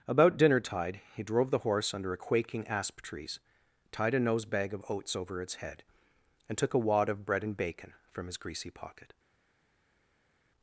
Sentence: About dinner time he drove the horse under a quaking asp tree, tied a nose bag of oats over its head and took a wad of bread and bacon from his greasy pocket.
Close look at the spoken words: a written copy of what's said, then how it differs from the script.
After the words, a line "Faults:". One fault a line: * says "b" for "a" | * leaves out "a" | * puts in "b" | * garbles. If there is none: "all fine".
About dinner tide he drove the horse under a quaking asp trees, tied a nose bag of oats over its head and took a wad of bread and bacon from his greasy pocket.
Faults:
* says "tide" for "time"
* says "trees" for "tree"